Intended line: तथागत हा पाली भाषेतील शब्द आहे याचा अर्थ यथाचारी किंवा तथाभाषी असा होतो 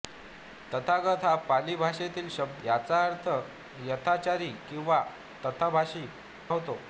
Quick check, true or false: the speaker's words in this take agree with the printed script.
false